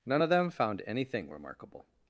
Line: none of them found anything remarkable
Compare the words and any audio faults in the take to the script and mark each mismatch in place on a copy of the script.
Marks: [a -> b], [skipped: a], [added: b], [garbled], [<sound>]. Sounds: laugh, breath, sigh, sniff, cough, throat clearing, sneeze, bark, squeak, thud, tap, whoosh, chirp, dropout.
none of them found anything remarkable